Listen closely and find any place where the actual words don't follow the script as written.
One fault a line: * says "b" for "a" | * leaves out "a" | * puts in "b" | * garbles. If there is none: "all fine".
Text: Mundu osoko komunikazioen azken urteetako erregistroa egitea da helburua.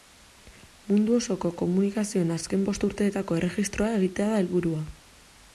* puts in "bost"